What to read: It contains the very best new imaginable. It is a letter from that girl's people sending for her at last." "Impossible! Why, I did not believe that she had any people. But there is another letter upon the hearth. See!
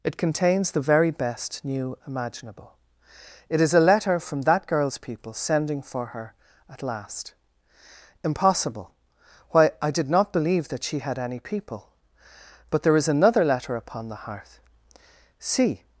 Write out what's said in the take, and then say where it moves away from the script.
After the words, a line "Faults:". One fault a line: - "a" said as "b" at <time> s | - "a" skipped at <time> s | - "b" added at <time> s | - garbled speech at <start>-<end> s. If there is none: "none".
It contains the very best new imaginable. It is a letter from that girl's people sending for her at last." "Impossible! Why, I did not believe that she had any people. But there is another letter upon the hearth. See!
Faults:
none